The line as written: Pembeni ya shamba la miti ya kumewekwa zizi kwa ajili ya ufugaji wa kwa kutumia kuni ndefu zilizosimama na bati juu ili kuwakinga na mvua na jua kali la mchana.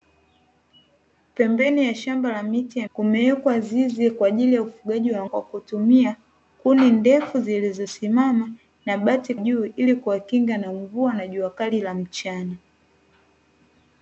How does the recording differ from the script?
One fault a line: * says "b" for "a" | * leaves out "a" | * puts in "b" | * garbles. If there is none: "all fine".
all fine